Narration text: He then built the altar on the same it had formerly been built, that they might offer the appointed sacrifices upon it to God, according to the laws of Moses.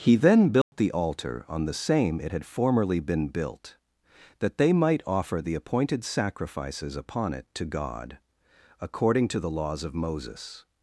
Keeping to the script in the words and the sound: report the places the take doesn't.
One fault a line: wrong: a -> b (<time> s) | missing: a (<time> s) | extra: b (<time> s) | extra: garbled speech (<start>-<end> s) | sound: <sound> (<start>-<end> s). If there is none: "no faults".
sound: dropout (0.6-0.7 s)